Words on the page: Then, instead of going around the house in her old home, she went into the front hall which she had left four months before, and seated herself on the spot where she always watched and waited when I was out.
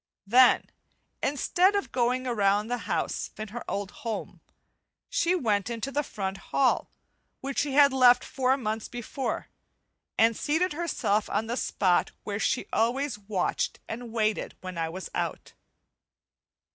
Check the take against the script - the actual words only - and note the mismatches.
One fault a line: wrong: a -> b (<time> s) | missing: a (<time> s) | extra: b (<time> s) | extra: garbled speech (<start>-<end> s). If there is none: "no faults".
no faults